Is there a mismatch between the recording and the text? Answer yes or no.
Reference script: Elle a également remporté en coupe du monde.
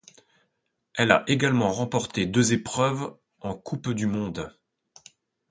yes